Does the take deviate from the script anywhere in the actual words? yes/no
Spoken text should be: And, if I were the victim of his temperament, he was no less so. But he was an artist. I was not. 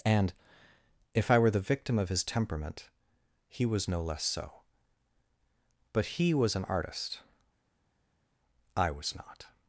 no